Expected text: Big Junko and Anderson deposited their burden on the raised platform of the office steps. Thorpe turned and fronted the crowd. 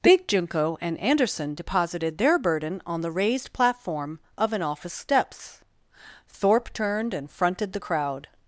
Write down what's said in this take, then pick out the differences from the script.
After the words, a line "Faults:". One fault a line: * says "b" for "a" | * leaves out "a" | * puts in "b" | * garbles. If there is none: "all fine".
Big Junko and Anderson deposited their burden on the raised platform of an office steps. Thorpe turned and fronted the crowd.
Faults:
* says "an" for "the"